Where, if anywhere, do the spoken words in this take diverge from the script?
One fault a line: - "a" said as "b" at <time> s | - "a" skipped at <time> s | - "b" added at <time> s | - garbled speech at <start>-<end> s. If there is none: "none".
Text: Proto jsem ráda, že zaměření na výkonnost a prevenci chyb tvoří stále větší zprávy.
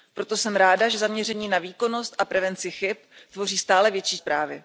none